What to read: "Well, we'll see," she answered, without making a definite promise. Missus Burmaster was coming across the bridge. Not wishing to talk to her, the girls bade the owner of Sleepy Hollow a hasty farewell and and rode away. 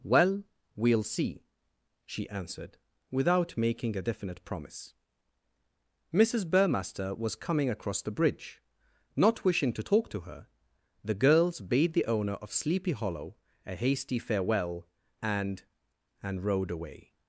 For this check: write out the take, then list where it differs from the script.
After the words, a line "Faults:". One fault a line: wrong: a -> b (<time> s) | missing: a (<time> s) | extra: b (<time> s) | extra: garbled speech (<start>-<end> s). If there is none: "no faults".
"Well, we'll see," she answered, without making a definite promise. Missus Burmaster was coming across the bridge. Not wishing to talk to her, the girls bade the owner of Sleepy Hollow a hasty farewell and and rode away.
Faults:
no faults